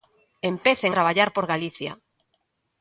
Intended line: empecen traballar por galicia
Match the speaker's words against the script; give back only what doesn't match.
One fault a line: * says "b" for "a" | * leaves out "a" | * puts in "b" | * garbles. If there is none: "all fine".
all fine